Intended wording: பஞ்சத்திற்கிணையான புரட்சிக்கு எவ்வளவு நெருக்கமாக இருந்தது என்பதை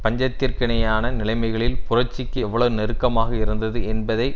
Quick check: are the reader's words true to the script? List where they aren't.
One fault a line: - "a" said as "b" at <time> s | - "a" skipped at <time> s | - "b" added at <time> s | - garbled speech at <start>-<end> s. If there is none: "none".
- "நிலைமைகளில்" added at 1.1 s